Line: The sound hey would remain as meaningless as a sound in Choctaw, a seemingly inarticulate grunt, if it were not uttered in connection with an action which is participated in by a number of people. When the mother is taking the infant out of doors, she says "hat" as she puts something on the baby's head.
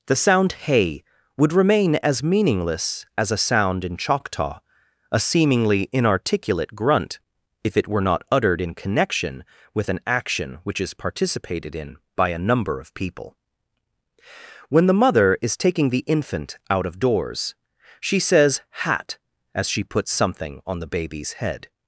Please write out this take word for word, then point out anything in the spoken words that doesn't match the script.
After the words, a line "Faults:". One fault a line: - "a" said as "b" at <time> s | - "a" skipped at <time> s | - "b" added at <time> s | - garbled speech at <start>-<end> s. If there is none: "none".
The sound hey would remain as meaningless as a sound in Choctaw, a seemingly inarticulate grunt, if it were not uttered in connection with an action which is participated in by a number of people. When the mother is taking the infant out of doors, she says "hat" as she puts something on the baby's head.
Faults:
none